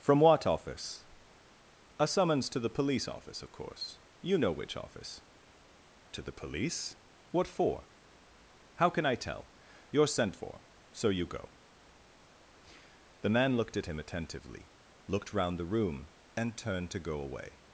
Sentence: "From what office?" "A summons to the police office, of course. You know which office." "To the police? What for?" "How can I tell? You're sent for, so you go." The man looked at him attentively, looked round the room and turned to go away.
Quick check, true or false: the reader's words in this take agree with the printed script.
true